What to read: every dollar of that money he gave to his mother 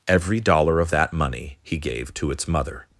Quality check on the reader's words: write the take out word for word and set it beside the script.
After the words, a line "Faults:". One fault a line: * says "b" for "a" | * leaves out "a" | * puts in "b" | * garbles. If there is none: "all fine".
every dollar of that money he gave to its mother
Faults:
* says "its" for "his"